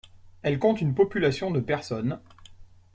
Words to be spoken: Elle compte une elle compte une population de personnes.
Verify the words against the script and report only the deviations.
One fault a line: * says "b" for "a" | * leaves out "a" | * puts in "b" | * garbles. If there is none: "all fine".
* leaves out "elle compte une"